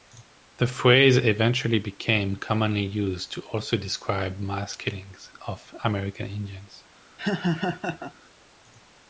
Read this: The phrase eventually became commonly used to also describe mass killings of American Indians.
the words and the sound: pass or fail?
fail